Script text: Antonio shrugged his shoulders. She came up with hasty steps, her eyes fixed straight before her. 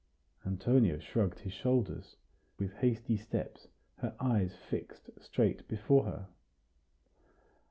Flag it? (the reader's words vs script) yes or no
yes